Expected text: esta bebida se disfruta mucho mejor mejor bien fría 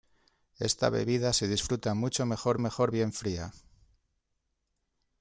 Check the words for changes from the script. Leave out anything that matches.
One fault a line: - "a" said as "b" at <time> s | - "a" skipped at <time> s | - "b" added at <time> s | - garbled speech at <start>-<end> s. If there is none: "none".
none